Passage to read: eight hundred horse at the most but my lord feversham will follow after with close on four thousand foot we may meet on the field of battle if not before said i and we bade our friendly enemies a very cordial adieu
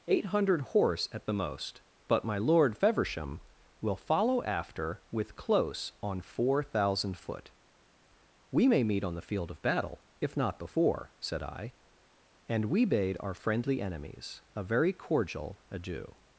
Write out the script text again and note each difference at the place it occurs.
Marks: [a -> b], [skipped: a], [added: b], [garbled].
eight hundred horse at the most but my lord feversham will follow after with close on four thousand foot we may meet on the field of battle if not before said i and we bade our friendly enemies a very cordial adieu